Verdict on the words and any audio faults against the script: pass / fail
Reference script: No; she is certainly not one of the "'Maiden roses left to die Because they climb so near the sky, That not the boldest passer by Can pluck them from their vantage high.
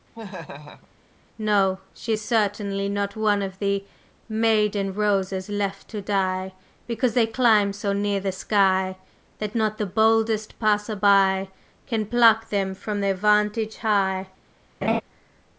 fail